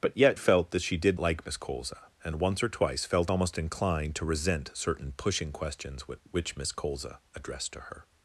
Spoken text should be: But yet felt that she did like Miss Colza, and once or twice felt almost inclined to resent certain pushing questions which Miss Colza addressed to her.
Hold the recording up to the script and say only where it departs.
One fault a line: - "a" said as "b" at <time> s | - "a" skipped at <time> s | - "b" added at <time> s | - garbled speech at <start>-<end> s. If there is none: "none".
none